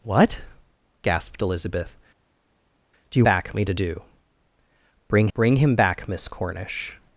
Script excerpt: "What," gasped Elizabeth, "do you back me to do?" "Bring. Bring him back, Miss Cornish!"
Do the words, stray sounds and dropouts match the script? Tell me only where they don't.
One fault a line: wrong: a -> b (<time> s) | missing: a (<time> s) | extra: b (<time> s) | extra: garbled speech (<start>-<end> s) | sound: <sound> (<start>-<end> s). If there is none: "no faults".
no faults